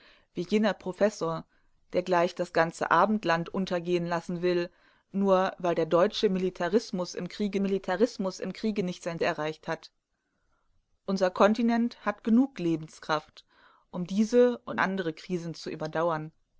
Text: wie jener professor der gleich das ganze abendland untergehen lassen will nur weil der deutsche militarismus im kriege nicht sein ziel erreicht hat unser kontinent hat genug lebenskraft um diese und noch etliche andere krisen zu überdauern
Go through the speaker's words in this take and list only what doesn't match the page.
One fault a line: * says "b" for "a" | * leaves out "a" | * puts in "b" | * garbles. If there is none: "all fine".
* puts in "militarismus im kriege"
* leaves out "ziel"
* leaves out "noch etliche"